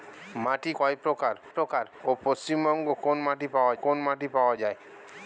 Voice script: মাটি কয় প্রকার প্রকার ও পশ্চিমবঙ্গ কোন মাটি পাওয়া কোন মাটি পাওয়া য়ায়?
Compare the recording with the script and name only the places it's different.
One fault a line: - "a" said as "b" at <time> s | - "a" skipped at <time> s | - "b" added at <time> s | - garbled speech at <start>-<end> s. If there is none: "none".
none